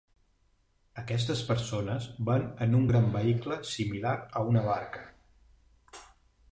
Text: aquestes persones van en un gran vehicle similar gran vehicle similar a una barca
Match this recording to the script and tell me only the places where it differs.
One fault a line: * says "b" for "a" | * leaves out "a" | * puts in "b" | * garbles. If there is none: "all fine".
* leaves out "gran vehicle similar"